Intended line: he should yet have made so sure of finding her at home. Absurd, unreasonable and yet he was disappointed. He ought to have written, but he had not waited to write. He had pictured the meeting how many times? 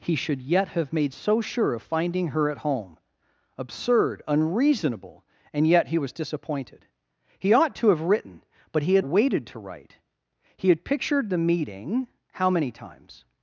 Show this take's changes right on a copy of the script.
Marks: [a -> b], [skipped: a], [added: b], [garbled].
he should yet have made so sure of finding her at home. Absurd, unreasonable and yet he was disappointed. He ought to have written, but he had [skipped: not] waited to write. He had pictured the meeting how many times?